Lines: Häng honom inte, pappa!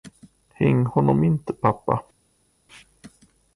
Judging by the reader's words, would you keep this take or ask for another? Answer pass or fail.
pass